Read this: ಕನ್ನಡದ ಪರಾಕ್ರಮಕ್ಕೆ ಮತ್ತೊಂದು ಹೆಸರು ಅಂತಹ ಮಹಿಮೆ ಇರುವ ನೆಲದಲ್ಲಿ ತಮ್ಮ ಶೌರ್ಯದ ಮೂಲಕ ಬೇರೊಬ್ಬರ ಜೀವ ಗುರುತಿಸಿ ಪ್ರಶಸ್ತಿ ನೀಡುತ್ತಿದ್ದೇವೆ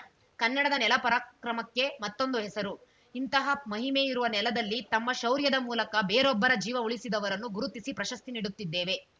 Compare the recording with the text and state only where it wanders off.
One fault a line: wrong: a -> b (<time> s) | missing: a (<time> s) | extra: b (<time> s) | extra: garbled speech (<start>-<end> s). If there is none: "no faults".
extra: ನೆಲ (0.7 s)
wrong: ಅಂತಹ -> ಇಂತಹ (3.1 s)
extra: ಉಳಿಸಿದವರನ್ನು (6.8 s)